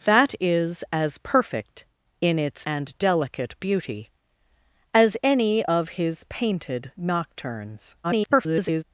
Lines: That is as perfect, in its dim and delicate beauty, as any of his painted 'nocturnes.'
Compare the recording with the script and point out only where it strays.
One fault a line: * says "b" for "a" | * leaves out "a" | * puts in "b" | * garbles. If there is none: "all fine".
* leaves out "dim"
* garbles